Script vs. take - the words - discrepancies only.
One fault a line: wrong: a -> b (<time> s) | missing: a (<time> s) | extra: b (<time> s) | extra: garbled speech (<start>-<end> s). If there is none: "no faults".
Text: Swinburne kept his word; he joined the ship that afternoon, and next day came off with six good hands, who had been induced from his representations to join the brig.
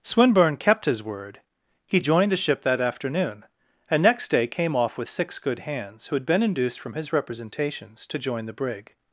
no faults